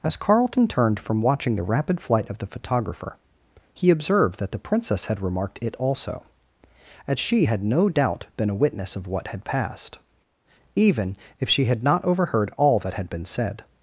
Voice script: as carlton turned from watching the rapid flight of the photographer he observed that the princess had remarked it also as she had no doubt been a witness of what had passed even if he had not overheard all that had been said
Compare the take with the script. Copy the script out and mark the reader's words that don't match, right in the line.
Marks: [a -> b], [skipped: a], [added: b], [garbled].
as carlton turned from watching the rapid flight of the photographer he observed that the princess had remarked it also as she had no doubt been a witness of what had passed even if [he -> she] had not overheard all that had been said